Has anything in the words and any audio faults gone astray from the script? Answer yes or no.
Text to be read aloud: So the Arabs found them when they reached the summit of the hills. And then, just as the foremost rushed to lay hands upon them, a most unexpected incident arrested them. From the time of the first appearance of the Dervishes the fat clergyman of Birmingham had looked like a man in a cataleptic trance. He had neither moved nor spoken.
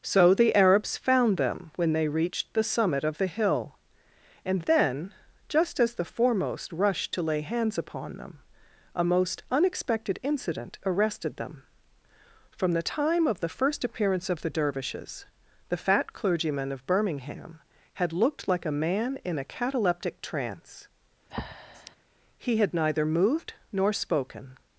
yes